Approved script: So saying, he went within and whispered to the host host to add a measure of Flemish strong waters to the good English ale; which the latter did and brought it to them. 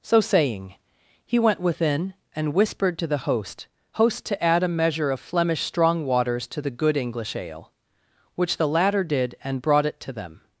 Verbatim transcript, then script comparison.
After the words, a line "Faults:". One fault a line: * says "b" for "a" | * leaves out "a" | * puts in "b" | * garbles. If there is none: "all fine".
So saying, he went within and whispered to the host host to add a measure of Flemish strong waters to the good English ale; which the latter did and brought it to them.
Faults:
all fine